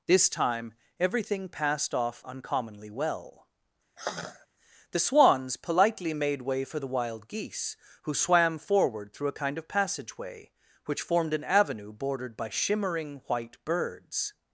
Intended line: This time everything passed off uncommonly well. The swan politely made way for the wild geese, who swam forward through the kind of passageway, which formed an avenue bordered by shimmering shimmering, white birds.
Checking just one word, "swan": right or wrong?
wrong